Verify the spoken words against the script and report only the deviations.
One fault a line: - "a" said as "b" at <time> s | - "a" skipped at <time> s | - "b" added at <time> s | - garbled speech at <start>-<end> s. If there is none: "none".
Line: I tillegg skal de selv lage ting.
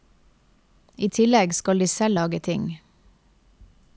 none